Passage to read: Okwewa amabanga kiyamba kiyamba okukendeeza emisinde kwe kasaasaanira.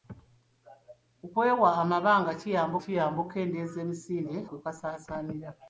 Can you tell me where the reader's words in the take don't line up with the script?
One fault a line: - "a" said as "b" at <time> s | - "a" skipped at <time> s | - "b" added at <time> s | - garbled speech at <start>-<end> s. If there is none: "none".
none